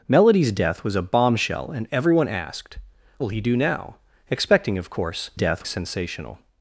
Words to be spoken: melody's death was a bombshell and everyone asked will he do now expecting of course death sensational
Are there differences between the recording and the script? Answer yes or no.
no